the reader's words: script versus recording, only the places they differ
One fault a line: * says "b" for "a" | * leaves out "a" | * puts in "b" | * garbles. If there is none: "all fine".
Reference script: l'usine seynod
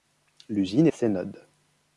all fine